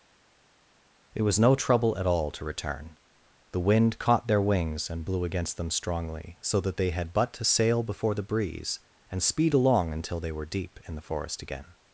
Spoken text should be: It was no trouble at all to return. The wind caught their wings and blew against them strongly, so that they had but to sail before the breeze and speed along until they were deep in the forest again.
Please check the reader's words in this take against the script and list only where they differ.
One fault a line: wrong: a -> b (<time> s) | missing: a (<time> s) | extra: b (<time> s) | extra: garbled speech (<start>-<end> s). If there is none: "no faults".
no faults